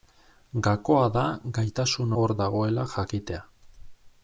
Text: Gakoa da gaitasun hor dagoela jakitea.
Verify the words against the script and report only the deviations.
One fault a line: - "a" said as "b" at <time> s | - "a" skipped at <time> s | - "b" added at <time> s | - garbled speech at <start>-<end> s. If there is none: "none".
none